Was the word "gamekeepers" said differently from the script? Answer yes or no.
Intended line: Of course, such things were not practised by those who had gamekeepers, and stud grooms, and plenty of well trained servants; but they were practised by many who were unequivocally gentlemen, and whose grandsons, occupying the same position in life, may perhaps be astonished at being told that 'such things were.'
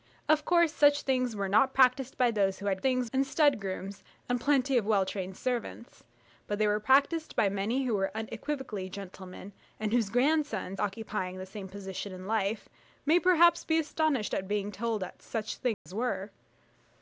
yes